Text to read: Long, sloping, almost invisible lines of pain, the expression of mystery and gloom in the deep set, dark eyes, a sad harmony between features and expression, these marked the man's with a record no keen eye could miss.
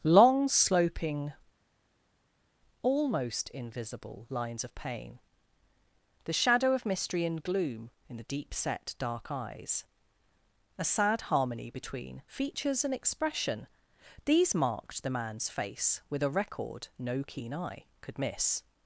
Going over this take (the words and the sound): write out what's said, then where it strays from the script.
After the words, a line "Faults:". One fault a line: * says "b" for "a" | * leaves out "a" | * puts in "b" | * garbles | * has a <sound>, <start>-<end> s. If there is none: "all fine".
Long, sloping, almost invisible lines of pain, the shadow of mystery and gloom in the deep set, dark eyes, a sad harmony between features and expression, these marked the man's face with a record no keen eye could miss.
Faults:
* says "shadow" for "expression"
* puts in "face"